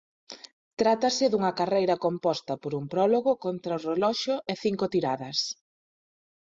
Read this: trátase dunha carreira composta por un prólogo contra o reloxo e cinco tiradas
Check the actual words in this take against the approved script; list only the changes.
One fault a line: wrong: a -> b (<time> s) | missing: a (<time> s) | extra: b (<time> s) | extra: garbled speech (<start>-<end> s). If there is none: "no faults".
no faults